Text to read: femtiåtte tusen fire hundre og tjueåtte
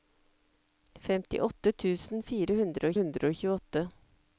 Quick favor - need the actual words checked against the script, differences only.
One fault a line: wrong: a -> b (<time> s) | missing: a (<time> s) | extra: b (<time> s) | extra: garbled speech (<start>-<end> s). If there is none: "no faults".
extra: hundre (3.0 s)